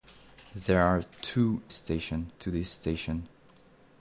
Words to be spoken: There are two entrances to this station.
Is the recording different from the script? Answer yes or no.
yes